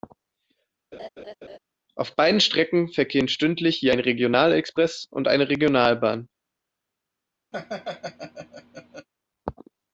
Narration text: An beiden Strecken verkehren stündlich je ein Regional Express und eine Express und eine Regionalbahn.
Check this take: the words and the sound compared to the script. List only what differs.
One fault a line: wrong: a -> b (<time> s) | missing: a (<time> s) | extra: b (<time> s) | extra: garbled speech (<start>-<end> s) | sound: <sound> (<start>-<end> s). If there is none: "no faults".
sound: laugh (0.9-1.6 s)
wrong: An -> Auf (1.9 s)
missing: Express und eine (5.5 s)
sound: laugh (7.5-9.1 s)